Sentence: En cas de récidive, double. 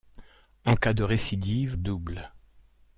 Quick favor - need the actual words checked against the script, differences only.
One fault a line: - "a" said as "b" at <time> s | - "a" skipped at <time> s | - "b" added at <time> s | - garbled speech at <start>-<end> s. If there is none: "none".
none